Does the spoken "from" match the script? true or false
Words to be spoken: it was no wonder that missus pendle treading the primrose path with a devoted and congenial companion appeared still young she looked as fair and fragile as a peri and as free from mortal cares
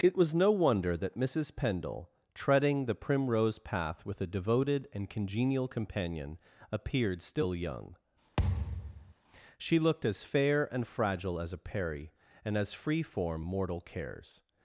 false